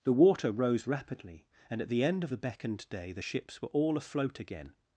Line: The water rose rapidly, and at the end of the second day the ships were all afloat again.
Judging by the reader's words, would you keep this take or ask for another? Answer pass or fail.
fail